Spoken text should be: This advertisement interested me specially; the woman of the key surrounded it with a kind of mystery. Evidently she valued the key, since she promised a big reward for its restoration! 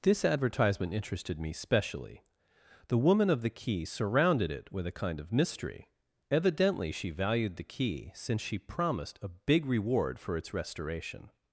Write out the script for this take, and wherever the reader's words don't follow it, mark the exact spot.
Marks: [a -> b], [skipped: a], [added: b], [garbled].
This advertisement interested me specially; the woman of the key surrounded it with a kind of mystery. Evidently she valued the key, since she promised a big reward for its restoration!